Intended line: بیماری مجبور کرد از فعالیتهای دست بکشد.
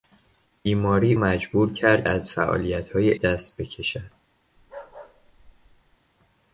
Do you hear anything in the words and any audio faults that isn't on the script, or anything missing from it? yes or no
yes